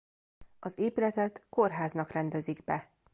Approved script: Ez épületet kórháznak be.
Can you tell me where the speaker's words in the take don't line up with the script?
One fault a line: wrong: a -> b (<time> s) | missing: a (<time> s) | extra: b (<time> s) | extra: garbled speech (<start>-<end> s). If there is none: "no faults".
wrong: Ez -> Az (0.6 s)
extra: rendezik (2.1 s)